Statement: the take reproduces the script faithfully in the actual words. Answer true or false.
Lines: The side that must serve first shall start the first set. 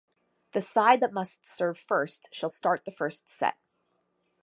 true